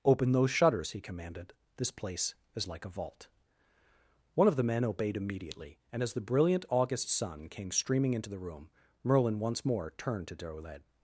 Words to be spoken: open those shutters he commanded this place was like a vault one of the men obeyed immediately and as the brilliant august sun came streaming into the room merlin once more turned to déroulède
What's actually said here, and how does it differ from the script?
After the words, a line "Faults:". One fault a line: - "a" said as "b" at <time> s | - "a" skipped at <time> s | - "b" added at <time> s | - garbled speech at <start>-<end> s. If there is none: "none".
open those shutters he commanded this place is like a vault one of the men obeyed immediately and as the brilliant august sun came streaming into the room merlin once more turned to déroulède
Faults:
- "was" said as "is" at 2.5 s